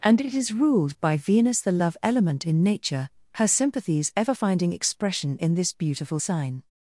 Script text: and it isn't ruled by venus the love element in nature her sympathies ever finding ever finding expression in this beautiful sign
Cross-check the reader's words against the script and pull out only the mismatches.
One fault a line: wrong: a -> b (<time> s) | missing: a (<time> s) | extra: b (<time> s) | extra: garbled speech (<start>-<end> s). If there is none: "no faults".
wrong: isn't -> is (0.3 s)
missing: ever finding (4.7 s)